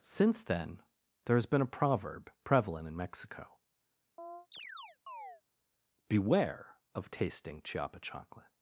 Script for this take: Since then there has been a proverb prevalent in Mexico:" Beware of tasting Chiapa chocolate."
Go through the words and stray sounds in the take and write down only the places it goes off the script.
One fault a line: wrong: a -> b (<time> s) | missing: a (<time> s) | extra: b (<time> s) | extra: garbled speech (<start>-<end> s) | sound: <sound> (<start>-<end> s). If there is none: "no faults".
sound: chirp (4.2-5.4 s)